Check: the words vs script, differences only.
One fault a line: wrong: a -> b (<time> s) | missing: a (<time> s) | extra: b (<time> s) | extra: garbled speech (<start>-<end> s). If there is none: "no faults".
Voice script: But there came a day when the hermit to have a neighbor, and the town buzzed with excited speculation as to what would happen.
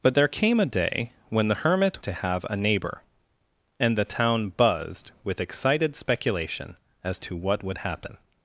no faults